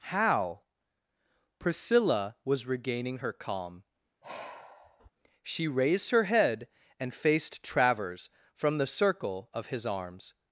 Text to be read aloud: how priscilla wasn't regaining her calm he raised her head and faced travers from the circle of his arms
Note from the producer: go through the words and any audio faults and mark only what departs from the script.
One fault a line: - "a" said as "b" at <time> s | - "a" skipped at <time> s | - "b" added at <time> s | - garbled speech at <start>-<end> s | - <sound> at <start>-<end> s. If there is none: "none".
- "wasn't" said as "was" at 2.4 s
- sigh at 4.2-5.1 s
- "he" said as "she" at 5.4 s